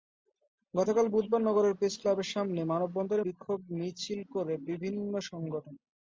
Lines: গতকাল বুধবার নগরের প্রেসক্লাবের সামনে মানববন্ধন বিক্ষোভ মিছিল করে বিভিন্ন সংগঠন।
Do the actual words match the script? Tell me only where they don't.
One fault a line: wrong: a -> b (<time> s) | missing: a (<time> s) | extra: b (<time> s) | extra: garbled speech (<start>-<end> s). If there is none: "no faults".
no faults